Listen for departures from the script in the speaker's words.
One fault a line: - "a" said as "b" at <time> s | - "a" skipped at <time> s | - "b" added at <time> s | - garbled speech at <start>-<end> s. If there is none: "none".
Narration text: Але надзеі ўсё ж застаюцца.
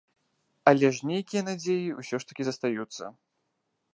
- "ж нейкія" added at 1.0 s
- "такі" added at 2.3 s